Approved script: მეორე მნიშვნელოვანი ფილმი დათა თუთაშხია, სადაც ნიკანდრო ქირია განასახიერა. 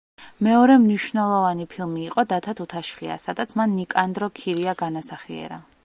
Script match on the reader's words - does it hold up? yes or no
no